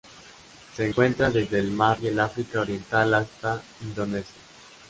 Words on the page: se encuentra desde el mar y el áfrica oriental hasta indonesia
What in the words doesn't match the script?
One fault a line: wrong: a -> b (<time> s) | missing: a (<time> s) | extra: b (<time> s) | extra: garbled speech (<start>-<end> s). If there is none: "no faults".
no faults